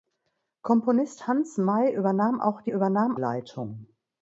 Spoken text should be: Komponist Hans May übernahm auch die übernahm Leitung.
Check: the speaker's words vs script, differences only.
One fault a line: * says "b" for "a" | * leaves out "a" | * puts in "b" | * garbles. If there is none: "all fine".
all fine